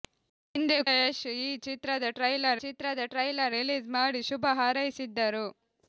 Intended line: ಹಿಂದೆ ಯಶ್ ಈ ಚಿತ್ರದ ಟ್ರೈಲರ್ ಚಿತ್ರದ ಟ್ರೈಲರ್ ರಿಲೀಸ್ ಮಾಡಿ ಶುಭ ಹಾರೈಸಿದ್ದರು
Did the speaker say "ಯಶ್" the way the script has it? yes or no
yes